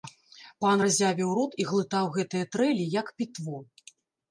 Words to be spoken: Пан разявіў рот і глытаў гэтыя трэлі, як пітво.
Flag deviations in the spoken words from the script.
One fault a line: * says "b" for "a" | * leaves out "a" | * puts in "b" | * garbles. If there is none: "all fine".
all fine